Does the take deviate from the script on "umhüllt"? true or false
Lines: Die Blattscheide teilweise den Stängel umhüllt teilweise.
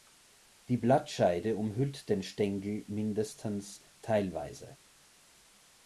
true